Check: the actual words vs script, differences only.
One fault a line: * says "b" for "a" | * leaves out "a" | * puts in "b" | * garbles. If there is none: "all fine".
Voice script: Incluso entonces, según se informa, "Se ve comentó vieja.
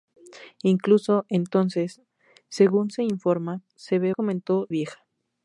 all fine